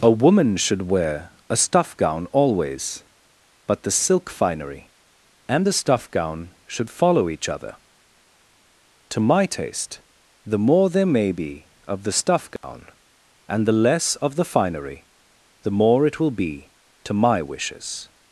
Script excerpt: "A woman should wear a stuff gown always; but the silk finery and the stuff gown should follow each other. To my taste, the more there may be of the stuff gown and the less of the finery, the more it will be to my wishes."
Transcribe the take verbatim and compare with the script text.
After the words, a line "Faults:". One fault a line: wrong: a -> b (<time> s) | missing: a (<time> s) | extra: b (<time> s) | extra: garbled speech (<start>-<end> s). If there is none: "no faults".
"A woman should wear a stuff gown always; but the silk finery and the stuff gown should follow each other. To my taste, the more there may be of the stuff gown and the less of the finery, the more it will be to my wishes."
Faults:
no faults